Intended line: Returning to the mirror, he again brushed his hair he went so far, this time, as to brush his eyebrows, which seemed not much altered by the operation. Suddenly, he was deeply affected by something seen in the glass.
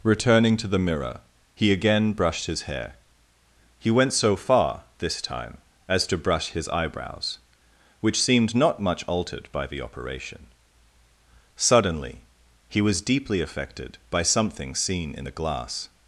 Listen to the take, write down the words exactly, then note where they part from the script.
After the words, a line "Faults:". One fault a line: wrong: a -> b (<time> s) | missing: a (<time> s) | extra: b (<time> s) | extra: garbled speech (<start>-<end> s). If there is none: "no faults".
Returning to the mirror, he again brushed his hair he went so far, this time, as to brush his eyebrows, which seemed not much altered by the operation. Suddenly, he was deeply affected by something seen in the glass.
Faults:
no faults